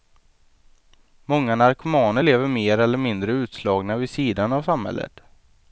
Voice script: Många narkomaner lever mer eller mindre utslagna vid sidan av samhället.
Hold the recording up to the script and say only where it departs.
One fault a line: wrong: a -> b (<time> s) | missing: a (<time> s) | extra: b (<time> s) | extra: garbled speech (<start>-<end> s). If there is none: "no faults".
no faults